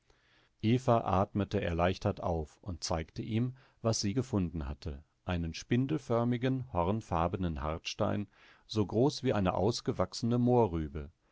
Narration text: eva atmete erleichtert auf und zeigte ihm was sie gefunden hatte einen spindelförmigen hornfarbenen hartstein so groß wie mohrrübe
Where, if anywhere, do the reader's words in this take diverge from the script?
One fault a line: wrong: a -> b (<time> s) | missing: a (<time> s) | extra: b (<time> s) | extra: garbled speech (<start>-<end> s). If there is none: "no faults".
extra: eine ausgewachsene (9.3 s)